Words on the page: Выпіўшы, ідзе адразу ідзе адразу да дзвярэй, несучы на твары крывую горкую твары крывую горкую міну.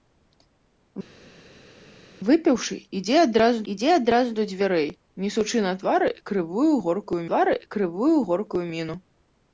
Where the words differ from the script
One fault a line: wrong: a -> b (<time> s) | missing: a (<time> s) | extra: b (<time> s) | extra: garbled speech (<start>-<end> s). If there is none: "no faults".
no faults